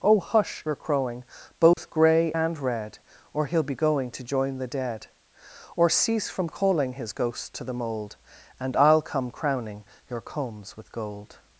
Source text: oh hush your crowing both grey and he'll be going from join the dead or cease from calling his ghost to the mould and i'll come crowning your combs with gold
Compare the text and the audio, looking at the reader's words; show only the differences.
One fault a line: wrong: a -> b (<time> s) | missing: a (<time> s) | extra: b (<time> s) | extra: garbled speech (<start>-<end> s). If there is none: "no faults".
extra: red or (2.6 s)
wrong: from -> to (4.1 s)